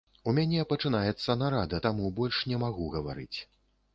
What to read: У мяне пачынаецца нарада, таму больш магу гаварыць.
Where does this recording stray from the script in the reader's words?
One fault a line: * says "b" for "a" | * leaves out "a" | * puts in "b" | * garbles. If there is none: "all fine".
* puts in "не"